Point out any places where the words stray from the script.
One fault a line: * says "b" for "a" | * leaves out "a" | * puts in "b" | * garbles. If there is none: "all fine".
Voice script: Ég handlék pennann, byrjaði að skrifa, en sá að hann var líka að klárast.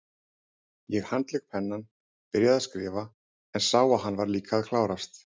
all fine